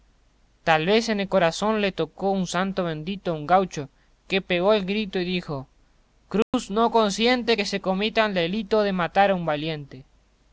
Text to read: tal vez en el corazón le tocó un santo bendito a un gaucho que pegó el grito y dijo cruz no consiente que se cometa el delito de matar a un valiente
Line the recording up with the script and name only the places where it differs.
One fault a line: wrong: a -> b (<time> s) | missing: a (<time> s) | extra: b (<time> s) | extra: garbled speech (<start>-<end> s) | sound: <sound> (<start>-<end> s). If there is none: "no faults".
sound: dropout (6.4-6.5 s)